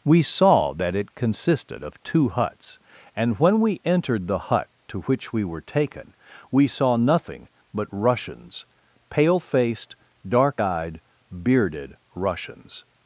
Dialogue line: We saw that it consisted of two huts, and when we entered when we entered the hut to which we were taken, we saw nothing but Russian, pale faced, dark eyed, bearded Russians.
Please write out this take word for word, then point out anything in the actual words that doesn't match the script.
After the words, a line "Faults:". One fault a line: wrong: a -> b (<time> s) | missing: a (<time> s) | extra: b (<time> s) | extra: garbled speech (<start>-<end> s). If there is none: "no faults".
We saw that it consisted of two huts, and when we entered the hut to which we were taken, we saw nothing but Russians, pale faced, dark eyed, bearded Russians.
Faults:
missing: when we entered (4.3 s)
wrong: Russian -> Russians (7.9 s)